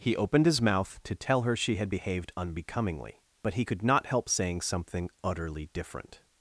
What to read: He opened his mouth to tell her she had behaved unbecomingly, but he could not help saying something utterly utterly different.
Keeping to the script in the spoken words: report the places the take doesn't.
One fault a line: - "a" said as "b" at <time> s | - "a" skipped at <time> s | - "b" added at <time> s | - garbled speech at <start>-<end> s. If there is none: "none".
- "utterly" skipped at 5.7 s